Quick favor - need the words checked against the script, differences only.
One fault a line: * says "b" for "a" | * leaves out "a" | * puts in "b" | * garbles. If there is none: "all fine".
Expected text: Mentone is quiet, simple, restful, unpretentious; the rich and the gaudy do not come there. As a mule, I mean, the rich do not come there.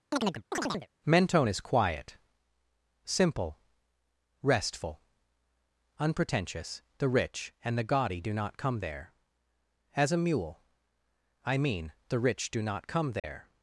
all fine